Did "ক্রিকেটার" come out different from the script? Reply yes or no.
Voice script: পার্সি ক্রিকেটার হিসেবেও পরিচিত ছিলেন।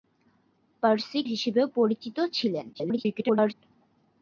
yes